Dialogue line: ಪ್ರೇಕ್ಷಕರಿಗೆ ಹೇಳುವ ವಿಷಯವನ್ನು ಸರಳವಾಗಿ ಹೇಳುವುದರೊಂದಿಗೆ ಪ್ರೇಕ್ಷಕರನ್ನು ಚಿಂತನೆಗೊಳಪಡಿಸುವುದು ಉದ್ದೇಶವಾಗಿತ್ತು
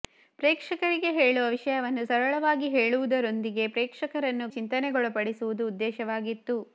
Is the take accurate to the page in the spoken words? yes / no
yes